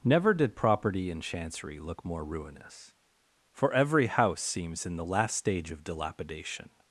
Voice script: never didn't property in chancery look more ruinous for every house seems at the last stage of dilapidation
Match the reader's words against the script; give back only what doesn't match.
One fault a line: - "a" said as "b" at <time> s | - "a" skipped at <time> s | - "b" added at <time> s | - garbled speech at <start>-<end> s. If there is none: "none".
- "didn't" said as "did" at 0.3 s
- "at" said as "in" at 4.8 s